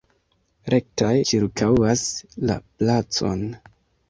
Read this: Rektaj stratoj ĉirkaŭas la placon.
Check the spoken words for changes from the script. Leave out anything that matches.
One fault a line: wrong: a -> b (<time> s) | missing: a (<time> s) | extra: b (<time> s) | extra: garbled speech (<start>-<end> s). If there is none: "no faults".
missing: stratoj (1.1 s)